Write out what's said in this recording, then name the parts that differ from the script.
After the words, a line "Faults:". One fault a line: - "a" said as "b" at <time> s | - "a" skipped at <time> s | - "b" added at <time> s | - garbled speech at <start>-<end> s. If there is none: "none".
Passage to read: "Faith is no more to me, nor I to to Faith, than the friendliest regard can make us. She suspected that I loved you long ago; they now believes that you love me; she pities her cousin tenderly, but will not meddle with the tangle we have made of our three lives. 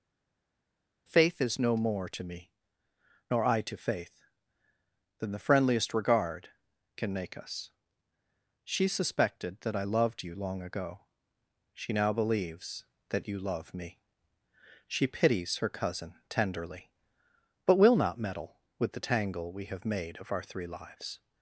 "Faith is no more to me, nor I to Faith, than the friendliest regard can make us. She suspected that I loved you long ago; she now believes that you love me; she pities her cousin tenderly, but will not meddle with the tangle we have made of our three lives.
Faults:
- "to" skipped at 3.8 s
- "they" said as "she" at 11.7 s